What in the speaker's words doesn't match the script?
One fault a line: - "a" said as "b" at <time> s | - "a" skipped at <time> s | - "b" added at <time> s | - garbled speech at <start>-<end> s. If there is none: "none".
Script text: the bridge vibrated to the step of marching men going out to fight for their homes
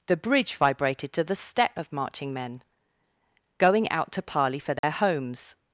- "fight" said as "parley" at 4.2 s